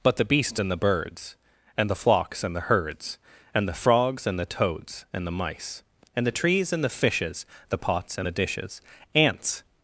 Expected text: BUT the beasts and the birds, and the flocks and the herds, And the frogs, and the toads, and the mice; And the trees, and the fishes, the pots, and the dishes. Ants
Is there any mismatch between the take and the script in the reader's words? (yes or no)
no